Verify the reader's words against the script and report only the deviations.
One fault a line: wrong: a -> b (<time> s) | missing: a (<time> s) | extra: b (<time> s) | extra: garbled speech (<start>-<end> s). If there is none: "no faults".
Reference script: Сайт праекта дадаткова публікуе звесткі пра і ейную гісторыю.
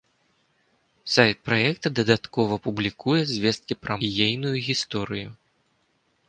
no faults